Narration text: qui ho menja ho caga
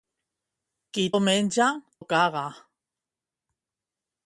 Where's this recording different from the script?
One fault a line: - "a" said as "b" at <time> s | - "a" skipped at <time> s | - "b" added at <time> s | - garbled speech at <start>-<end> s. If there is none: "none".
none